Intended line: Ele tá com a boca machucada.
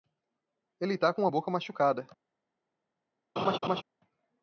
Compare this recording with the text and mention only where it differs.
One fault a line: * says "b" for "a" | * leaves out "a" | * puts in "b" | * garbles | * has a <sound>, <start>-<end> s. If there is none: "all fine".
* has a laugh, 3.4-3.8 s